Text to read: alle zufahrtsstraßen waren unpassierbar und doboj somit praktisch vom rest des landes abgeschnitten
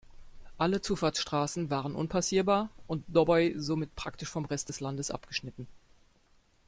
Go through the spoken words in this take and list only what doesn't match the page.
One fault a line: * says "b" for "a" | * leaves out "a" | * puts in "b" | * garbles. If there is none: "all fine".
all fine